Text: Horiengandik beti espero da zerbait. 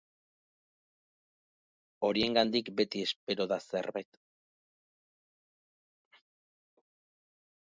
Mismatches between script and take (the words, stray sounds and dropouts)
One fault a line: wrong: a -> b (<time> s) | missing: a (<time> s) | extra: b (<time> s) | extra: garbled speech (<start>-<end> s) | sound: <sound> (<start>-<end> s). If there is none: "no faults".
no faults